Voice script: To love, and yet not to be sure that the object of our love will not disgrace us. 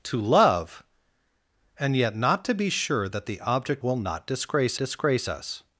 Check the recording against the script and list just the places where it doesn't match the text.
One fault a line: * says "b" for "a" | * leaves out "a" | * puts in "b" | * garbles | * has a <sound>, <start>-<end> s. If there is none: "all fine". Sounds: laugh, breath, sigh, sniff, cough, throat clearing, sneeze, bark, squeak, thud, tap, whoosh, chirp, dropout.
* leaves out "of our love"
* puts in "disgrace"